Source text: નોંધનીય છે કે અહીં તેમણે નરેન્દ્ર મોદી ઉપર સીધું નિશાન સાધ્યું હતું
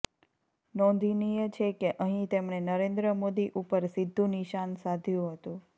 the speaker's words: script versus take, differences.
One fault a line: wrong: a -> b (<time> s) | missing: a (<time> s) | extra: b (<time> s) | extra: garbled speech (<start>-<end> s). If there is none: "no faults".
no faults